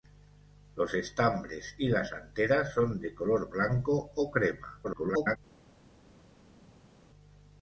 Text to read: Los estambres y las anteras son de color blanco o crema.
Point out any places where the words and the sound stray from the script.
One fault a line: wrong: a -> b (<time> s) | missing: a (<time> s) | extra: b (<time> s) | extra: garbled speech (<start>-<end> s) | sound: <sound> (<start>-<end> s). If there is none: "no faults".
extra: garbled speech (4.8-5.4 s)